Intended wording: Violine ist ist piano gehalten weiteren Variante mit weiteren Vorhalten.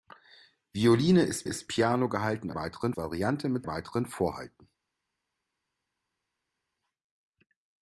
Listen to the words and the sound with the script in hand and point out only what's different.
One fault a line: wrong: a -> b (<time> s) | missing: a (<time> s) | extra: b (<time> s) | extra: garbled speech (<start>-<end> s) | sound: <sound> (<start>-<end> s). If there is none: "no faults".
no faults